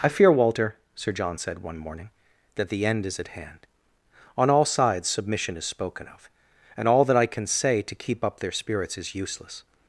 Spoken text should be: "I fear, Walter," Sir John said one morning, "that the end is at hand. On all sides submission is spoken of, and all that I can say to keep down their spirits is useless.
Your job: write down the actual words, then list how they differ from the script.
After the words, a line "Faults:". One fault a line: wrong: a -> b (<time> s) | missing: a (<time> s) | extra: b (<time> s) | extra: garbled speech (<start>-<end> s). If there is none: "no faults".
"I fear, Walter," Sir John said one morning, "that the end is at hand. On all sides submission is spoken of, and all that I can say to keep up their spirits is useless.
Faults:
wrong: down -> up (8.2 s)